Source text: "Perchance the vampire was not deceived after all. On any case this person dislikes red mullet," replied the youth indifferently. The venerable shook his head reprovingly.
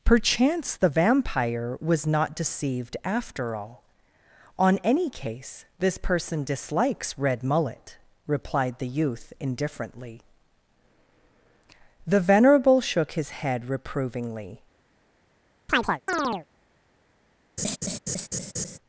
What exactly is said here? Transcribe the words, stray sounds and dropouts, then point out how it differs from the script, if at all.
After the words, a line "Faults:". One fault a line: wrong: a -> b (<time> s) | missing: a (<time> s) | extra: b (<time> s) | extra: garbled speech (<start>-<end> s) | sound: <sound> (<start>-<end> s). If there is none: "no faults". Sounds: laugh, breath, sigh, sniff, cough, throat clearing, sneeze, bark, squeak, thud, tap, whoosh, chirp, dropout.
"Perchance the vampire was not deceived after all. On any case this person dislikes red mullet," replied the youth indifferently. The venerable shook his head reprovingly.
Faults:
sound: chirp (15.7-16.5 s)
sound: laugh (17.6-18.8 s)